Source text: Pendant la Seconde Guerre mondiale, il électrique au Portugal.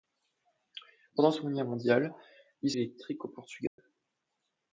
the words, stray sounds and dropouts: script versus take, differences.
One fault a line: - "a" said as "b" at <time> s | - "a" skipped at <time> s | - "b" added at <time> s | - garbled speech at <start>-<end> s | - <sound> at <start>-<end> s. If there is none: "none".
- dropout at 3.7-3.8 s